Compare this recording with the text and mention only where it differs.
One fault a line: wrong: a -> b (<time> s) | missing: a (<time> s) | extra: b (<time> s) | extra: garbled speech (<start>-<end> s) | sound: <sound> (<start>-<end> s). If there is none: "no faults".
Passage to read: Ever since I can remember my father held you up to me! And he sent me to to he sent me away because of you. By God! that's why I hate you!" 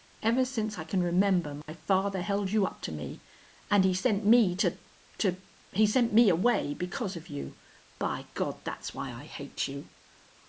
sound: dropout (1.6-1.7 s)